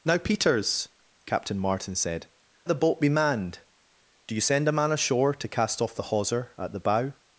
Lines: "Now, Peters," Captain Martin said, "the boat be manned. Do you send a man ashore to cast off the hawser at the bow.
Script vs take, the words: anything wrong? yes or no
no